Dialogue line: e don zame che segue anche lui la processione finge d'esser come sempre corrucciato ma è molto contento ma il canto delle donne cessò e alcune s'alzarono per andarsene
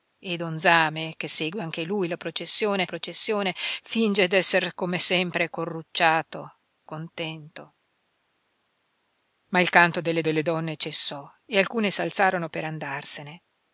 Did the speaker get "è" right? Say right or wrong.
wrong